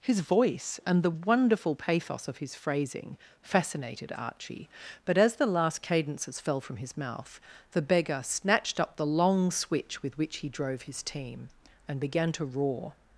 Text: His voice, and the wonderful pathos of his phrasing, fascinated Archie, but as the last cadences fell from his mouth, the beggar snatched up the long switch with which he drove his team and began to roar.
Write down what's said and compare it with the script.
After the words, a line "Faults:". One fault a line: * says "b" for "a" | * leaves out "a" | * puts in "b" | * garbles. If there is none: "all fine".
His voice, and the wonderful pathos of his phrasing, fascinated Archie, but as the last cadences fell from his mouth, the beggar snatched up the long switch with which he drove his team and began to roar.
Faults:
all fine